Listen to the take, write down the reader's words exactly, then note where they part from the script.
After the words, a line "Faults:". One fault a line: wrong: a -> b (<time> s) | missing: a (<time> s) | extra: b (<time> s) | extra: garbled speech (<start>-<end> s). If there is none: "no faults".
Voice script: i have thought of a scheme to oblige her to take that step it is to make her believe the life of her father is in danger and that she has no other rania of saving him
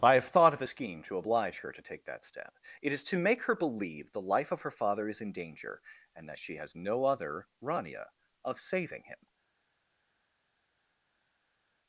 i have thought of a scheme to oblige her to take that step it is to make her believe the life of her father is in danger and that she has no other rania of saving him
Faults:
no faults